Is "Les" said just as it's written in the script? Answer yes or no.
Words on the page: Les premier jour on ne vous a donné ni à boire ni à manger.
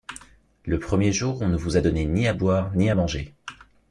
no